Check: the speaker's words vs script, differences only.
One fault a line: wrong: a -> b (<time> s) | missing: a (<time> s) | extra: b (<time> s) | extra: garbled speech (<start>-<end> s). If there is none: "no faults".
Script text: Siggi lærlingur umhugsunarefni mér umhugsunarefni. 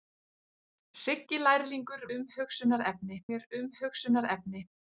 no faults